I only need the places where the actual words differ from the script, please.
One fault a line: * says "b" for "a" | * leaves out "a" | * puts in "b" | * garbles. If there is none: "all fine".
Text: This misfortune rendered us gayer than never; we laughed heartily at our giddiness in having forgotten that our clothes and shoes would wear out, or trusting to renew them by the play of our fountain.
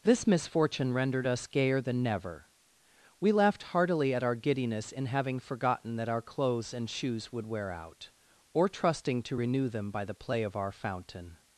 all fine